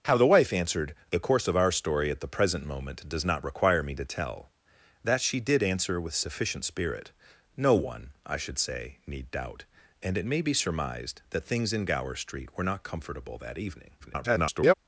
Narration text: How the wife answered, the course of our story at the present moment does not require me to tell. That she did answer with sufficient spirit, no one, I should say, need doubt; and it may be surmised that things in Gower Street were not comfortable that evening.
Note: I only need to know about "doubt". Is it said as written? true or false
true